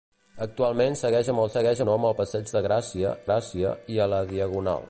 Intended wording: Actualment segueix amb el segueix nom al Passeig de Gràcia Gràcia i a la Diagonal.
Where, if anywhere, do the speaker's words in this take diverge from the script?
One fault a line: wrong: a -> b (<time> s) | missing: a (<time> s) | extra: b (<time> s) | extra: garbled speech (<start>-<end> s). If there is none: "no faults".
no faults